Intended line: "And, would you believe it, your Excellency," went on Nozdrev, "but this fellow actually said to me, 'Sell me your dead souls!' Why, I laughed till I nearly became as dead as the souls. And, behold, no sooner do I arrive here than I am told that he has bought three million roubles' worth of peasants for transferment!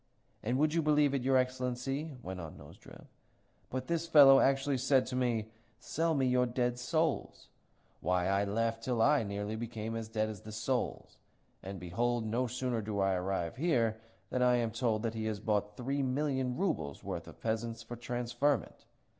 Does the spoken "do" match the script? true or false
true